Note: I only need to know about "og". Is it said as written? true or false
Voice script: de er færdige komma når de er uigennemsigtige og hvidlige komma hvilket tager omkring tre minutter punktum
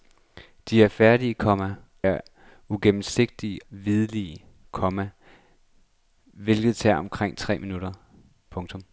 false